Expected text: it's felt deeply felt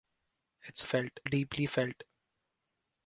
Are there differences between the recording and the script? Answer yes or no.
no